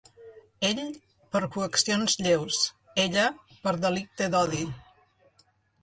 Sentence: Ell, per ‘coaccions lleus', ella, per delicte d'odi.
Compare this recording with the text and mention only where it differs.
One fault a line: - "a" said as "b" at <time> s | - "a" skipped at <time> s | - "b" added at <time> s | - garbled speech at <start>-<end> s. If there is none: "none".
none